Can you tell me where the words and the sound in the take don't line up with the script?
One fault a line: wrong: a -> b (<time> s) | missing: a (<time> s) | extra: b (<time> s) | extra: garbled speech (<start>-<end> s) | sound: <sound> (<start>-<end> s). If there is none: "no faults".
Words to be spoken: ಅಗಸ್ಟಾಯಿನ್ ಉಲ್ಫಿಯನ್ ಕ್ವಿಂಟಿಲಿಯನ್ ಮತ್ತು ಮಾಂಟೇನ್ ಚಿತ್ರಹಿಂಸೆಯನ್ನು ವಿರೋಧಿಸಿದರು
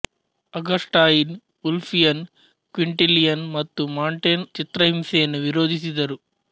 no faults